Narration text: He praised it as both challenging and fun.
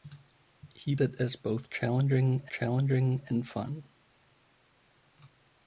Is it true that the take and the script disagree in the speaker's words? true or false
true